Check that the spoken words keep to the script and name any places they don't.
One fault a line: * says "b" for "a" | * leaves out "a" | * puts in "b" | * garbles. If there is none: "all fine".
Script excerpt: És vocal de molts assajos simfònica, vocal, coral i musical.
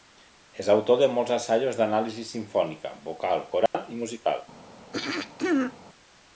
* says "autor" for "vocal"
* puts in "d'anàlisi"